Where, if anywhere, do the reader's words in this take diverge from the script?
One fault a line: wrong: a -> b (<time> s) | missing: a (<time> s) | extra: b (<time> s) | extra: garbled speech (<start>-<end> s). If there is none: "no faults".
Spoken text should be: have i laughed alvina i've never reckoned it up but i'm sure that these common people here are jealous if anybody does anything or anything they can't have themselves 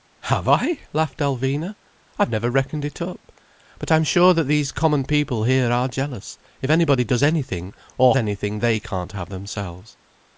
no faults